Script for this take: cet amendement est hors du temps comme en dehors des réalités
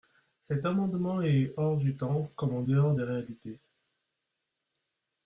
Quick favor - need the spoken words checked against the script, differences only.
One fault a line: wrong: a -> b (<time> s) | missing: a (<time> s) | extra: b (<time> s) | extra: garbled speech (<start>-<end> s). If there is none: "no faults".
no faults